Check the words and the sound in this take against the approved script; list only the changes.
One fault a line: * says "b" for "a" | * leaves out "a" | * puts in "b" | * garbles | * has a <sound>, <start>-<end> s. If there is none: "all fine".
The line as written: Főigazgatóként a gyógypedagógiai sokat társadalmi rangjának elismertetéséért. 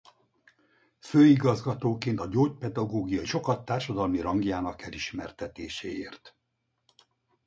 all fine